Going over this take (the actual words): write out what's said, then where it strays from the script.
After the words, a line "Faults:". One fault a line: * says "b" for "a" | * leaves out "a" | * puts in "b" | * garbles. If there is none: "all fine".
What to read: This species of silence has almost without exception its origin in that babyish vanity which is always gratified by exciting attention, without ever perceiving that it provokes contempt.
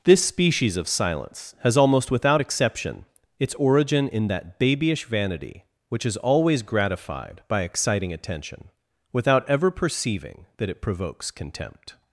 This species of silence has almost without exception its origin in that babyish vanity which is always gratified by exciting attention, without ever perceiving that it provokes contempt.
Faults:
all fine